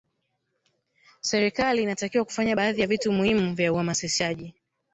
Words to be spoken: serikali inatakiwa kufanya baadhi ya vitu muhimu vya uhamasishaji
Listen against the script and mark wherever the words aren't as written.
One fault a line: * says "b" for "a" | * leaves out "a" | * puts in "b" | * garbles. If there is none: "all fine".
all fine